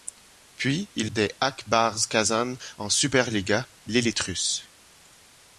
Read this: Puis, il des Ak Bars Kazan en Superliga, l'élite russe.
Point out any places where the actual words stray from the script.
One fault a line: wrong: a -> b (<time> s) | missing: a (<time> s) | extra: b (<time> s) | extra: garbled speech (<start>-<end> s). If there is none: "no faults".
no faults